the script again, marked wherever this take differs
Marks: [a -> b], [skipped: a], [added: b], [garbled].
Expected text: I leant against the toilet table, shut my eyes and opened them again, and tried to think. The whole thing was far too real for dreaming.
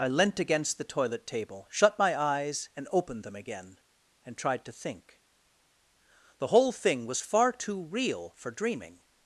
I leant against the toilet table, shut my eyes and opened them again, and tried to think. The whole thing was far too real for dreaming.